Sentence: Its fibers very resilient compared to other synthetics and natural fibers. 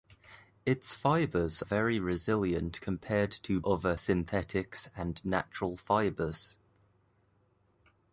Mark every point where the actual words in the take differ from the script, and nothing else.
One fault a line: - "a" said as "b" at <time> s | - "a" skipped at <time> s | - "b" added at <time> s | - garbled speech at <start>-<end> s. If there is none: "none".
none